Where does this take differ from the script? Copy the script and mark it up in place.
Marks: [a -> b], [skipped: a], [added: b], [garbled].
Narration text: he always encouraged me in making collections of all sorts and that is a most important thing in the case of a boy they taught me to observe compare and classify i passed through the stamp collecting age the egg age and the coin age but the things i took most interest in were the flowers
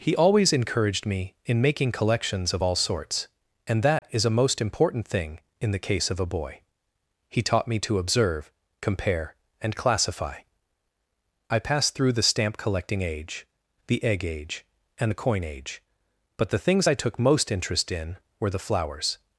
he always encouraged me in making collections of all sorts and that is a most important thing in the case of a boy [they -> he] taught me to observe compare and classify i passed through the stamp collecting age the egg age and the coin age but the things i took most interest in were the flowers